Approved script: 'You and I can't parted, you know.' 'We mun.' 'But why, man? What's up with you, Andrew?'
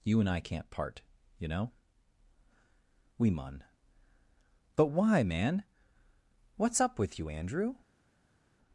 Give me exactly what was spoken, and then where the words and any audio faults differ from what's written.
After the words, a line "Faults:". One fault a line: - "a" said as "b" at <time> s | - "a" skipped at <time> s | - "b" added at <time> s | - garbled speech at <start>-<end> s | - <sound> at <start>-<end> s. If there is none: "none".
'You and I can't part, you know.' 'We mun.' 'But why, man? What's up with you, Andrew?'
Faults:
- "parted" said as "part" at 0.7 s